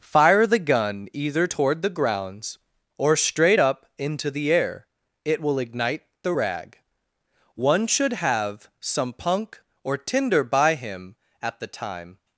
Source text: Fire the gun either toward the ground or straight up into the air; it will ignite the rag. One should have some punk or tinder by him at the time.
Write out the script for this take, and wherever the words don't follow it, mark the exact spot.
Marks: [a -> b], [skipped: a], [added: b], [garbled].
Fire the gun either toward the [ground -> grounds] or straight up into the air; it will ignite the rag. One should have some punk or tinder by him at the time.